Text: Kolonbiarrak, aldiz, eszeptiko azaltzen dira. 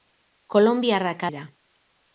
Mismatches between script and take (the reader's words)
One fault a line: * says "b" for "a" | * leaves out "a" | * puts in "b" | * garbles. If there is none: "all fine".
* leaves out "aldiz eszeptiko azaltzen"